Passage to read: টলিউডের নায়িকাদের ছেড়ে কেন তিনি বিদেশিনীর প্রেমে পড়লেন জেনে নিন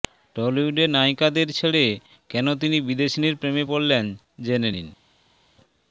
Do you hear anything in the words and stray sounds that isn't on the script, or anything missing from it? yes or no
no